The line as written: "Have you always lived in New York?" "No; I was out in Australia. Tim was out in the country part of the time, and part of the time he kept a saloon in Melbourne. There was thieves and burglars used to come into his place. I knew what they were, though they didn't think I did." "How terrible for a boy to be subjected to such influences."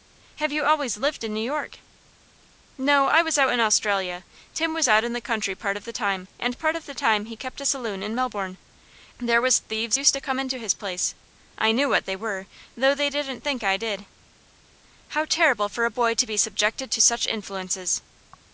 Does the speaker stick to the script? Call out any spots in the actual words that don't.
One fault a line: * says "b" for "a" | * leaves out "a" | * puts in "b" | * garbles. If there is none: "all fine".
* leaves out "and burglars"